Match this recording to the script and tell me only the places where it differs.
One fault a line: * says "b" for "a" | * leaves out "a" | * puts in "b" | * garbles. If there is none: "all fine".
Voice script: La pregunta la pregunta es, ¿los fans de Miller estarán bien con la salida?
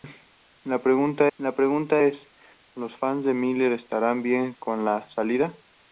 all fine